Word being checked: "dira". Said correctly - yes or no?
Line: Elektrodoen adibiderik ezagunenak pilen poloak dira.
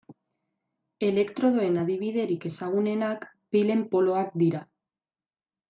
yes